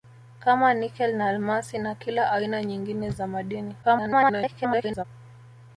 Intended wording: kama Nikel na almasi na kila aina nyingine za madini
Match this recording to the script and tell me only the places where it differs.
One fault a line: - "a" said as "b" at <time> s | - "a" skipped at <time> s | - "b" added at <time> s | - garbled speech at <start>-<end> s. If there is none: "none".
- garbled speech at 3.8-5.0 s